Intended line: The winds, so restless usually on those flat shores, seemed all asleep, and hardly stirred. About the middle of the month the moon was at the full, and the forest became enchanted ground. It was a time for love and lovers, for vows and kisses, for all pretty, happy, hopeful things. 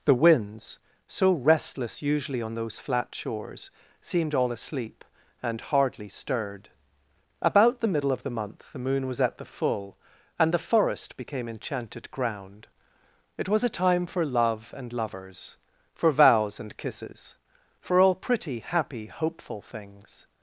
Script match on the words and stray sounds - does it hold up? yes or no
yes